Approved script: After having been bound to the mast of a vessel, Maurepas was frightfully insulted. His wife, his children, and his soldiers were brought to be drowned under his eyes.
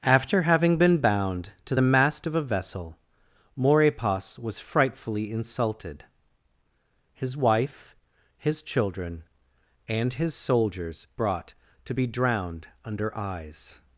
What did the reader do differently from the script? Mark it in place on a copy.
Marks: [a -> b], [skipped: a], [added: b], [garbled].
After having been bound to the mast of a vessel, Maurepas was frightfully insulted. His wife, his children, and his soldiers [skipped: were] brought to be drowned under [skipped: his] eyes.